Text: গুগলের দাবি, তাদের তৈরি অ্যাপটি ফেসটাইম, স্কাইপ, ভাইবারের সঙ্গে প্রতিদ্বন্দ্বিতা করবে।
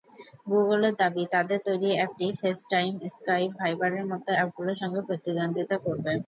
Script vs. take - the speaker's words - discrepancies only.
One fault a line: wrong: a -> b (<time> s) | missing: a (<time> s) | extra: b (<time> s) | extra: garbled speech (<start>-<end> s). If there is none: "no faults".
extra: মতো অ্যাপগুলোর (4.1 s)